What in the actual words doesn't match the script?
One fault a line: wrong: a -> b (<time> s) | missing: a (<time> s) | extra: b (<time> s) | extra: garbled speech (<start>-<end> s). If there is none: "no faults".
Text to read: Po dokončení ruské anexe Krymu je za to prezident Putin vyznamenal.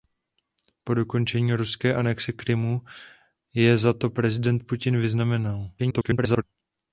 extra: garbled speech (5.8-6.4 s)